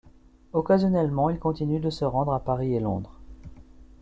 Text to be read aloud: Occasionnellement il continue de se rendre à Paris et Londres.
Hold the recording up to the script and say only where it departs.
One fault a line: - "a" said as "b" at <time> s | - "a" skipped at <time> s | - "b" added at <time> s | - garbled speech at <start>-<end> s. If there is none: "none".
none